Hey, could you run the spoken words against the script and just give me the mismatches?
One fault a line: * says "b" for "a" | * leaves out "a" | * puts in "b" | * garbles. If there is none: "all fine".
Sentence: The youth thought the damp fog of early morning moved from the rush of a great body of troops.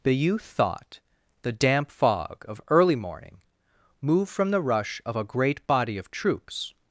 all fine